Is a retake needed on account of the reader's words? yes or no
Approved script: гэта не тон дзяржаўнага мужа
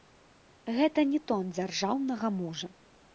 no